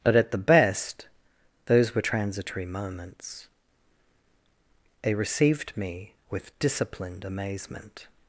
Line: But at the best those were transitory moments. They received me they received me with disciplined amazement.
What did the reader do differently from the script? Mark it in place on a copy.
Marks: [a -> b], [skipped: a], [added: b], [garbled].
But at the best those were transitory moments. They received me [skipped: they received me] with disciplined amazement.